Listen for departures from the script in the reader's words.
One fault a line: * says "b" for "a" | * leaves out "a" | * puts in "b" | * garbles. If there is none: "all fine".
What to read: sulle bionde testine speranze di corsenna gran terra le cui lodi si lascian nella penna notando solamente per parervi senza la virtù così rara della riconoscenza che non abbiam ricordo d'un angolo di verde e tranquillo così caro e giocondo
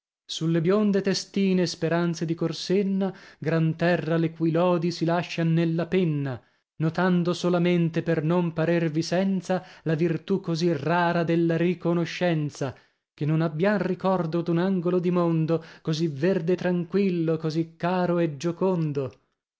* puts in "non"
* puts in "mondo così"